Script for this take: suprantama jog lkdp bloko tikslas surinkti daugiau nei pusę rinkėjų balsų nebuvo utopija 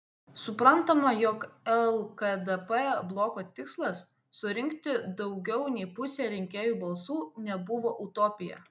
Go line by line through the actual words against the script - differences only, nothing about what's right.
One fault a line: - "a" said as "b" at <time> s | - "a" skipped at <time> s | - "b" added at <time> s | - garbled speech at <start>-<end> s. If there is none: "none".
none